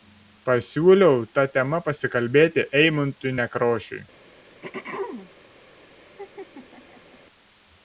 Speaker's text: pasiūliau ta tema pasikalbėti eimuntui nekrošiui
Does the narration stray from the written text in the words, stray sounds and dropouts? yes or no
yes